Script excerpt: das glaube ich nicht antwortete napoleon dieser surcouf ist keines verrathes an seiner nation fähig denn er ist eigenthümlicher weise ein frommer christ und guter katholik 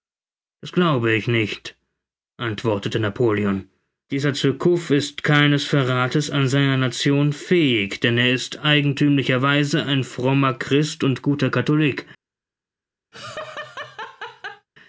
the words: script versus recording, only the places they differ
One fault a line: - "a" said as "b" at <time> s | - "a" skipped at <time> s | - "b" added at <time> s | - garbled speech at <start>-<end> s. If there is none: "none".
none